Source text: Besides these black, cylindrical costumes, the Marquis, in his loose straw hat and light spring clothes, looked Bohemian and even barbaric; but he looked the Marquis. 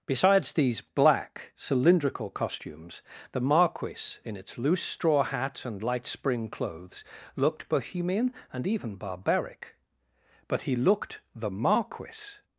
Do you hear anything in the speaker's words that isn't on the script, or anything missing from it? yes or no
yes